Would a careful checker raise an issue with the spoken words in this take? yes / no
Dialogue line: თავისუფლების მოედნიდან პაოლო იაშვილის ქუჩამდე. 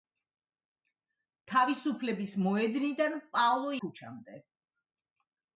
yes